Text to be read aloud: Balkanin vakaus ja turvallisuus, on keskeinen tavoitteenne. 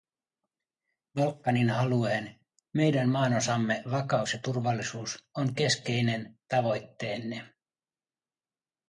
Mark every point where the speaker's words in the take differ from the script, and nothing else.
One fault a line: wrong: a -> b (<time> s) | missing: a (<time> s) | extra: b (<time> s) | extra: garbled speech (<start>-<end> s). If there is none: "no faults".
extra: alueen meidän maanosamme (1.7 s)